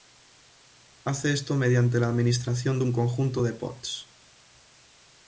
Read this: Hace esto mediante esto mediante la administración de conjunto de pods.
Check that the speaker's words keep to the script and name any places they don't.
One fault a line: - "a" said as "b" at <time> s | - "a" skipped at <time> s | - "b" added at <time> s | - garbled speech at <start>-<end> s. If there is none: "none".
- "esto mediante" skipped at 2.0 s
- "un" added at 2.8 s